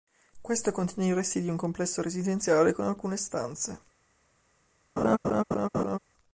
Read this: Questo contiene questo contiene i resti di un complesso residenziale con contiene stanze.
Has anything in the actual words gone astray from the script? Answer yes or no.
yes